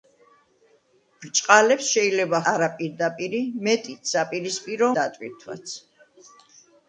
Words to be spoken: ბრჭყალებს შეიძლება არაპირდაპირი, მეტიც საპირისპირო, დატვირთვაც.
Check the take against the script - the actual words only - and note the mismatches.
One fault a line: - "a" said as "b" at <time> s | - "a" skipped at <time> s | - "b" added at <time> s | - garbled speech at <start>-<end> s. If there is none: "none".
none